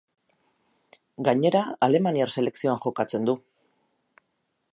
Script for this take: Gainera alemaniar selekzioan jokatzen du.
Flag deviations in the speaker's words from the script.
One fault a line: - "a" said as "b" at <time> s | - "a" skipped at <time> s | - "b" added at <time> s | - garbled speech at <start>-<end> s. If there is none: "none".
none